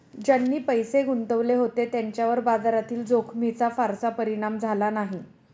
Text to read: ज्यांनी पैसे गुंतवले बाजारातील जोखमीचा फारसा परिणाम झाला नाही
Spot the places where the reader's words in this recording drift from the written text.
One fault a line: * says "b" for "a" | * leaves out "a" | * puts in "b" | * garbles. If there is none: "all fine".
* puts in "होते त्यांच्यावर"